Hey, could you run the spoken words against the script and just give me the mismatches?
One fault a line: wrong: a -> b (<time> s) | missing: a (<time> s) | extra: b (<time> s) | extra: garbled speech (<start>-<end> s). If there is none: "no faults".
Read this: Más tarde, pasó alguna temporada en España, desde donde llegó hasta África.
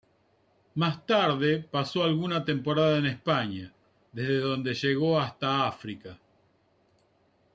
no faults